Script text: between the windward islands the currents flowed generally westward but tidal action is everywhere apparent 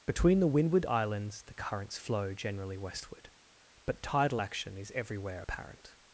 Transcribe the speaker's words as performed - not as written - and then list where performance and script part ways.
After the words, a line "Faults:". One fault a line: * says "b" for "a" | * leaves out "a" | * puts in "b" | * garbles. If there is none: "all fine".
between the windward islands the currents flow generally westward but tidal action is everywhere apparent
Faults:
* says "flow" for "flowed"